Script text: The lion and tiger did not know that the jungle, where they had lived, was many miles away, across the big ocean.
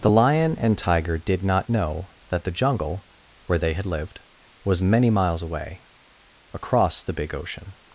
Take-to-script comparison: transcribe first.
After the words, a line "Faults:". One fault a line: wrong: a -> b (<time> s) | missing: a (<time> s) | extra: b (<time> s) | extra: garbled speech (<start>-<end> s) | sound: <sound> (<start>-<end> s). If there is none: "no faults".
The lion and tiger did not know that the jungle, where they had lived, was many miles away, across the big ocean.
Faults:
no faults